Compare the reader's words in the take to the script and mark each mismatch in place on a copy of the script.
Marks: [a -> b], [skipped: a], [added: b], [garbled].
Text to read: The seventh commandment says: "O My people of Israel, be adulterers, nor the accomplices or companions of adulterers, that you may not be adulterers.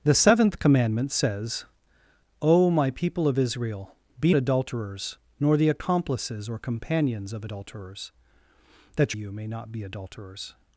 The seventh commandment says: "O My people of Israel, be adulterers, nor the accomplices or companions of adulterers, that you may not be adulterers.